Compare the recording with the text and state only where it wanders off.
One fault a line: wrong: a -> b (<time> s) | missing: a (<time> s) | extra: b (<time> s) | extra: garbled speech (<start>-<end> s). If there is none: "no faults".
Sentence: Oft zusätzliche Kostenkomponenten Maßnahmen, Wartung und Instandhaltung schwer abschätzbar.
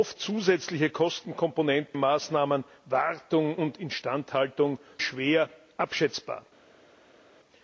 no faults